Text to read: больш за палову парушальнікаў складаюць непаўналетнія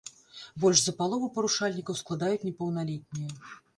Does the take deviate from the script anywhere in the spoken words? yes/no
no